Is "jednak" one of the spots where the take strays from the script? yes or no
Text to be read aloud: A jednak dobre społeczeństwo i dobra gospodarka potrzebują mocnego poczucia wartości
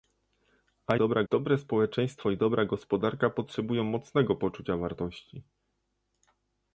yes